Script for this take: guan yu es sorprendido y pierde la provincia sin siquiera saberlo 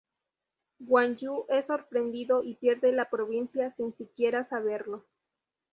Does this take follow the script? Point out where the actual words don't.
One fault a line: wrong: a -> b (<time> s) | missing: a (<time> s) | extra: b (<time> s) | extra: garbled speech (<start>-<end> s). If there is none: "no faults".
no faults